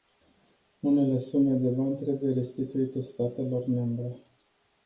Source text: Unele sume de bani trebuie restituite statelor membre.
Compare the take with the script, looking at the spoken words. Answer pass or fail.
pass